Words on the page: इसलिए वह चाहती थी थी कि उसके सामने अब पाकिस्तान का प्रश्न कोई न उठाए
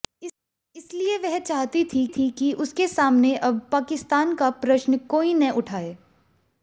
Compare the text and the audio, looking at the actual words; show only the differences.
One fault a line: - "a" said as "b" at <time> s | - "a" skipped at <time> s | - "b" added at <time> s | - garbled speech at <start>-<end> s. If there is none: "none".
none